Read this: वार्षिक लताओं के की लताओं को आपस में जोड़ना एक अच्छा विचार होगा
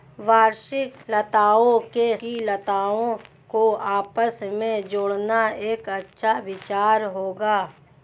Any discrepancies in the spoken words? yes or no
no